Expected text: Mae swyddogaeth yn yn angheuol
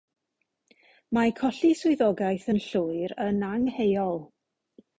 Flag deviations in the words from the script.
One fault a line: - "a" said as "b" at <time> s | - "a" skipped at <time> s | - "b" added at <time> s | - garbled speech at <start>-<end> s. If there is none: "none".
- "colli" added at 1.4 s
- "llwyr" added at 2.7 s